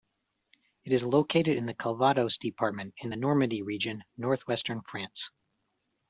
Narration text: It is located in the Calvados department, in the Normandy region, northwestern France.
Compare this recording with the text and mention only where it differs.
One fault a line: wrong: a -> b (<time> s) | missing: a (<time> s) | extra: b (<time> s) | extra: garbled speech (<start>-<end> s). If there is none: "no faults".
no faults